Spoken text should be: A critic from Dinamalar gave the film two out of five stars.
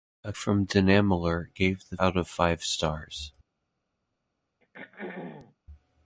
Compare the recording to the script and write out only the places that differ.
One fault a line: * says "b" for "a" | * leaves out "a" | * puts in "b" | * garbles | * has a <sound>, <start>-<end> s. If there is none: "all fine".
* leaves out "critic"
* leaves out "film two"
* has a throat clearing, 4.6-5.5 s